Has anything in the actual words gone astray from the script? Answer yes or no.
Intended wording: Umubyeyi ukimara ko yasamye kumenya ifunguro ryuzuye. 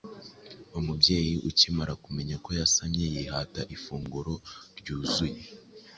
yes